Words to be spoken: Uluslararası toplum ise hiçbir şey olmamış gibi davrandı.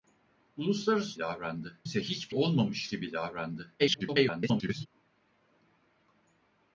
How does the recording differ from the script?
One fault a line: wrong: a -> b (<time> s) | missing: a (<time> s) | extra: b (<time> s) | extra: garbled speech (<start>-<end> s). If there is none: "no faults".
wrong: toplum -> davrandı (1.2 s)
missing: şey (2.3 s)
extra: garbled speech (3.8-4.9 s)